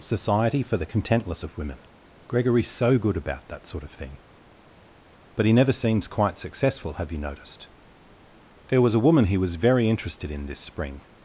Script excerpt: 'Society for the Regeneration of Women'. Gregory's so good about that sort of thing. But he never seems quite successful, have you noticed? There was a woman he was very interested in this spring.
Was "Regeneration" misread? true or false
true